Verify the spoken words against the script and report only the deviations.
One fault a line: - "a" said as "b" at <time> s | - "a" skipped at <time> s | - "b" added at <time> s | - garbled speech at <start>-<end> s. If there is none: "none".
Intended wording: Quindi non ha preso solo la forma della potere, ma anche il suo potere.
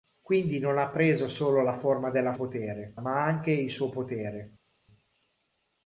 none